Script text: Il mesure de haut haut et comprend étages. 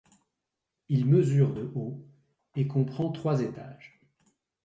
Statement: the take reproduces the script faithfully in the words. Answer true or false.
false